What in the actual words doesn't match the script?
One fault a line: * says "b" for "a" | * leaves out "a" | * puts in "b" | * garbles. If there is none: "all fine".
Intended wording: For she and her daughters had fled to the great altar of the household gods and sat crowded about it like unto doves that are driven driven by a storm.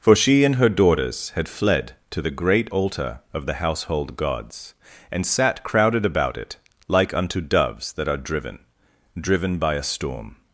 all fine